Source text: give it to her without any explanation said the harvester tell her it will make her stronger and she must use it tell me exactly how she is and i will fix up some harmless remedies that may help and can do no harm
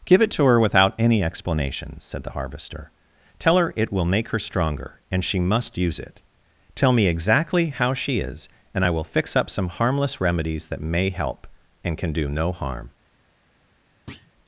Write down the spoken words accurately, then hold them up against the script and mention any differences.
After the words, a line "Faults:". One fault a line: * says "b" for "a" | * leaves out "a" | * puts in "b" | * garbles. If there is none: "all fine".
give it to her without any explanation said the harvester tell her it will make her stronger and she must use it tell me exactly how she is and i will fix up some harmless remedies that may help and can do no harm
Faults:
all fine